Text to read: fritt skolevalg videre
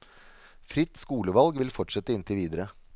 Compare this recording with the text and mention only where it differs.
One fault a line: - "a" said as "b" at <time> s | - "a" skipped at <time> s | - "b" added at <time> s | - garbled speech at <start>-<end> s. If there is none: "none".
- "vil fortsette inntil" added at 1.6 s